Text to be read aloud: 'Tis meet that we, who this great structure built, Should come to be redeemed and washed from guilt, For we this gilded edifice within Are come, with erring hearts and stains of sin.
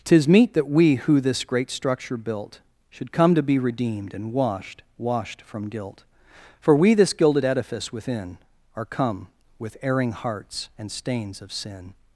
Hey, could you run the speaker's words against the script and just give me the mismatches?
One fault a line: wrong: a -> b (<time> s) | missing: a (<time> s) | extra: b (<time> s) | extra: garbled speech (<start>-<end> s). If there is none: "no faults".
extra: washed (5.0 s)